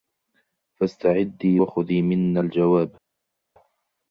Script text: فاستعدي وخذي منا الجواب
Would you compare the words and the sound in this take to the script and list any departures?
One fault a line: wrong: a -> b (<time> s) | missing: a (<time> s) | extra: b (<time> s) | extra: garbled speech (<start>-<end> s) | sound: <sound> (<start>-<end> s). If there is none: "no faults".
no faults